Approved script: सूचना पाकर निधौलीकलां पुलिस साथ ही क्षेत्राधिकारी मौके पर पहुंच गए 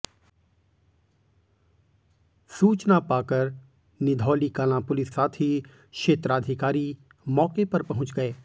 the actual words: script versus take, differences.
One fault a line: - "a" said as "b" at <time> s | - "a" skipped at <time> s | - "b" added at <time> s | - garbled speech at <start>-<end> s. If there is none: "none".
none